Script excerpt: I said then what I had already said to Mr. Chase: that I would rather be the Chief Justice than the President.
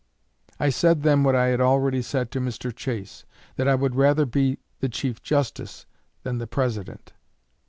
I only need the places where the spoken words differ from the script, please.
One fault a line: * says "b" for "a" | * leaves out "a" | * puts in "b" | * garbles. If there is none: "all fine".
all fine